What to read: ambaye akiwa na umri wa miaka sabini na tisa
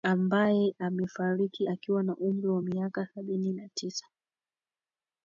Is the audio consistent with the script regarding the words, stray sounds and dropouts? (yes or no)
no